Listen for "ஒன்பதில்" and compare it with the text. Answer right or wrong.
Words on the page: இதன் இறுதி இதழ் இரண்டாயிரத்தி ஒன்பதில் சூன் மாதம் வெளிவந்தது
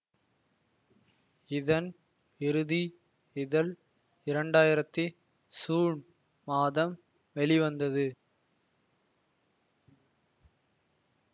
wrong